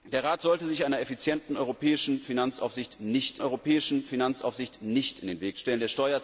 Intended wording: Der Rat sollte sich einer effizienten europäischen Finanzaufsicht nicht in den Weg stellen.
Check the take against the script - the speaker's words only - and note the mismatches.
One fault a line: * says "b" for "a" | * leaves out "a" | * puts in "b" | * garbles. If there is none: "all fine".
* puts in "europäischen Finanzaufsicht nicht"